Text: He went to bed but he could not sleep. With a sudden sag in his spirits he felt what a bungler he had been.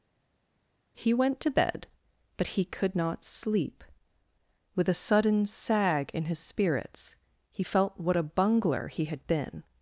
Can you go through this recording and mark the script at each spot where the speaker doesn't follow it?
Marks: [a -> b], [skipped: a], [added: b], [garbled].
He went to bed but he could not sleep. With a sudden sag in his spirits he felt what a bungler he had been.